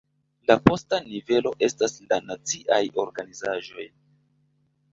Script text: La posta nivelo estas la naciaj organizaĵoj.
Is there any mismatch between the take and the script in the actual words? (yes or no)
no